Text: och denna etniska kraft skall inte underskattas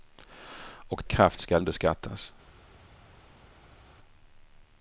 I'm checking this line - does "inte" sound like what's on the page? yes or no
no